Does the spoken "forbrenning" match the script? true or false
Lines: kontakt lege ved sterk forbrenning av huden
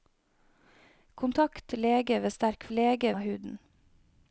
false